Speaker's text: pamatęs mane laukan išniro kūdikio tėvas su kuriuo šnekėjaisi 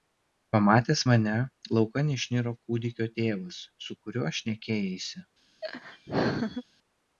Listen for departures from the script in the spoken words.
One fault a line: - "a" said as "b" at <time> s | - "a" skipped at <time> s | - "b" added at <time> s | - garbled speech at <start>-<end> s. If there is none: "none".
none